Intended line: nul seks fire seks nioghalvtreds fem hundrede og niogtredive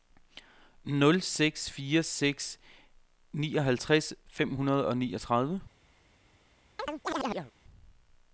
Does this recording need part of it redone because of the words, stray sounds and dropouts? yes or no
yes